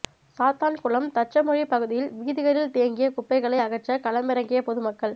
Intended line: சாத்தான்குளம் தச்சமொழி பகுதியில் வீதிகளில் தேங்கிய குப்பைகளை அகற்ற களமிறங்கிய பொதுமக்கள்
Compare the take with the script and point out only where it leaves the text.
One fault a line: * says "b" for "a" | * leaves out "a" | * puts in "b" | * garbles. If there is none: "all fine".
all fine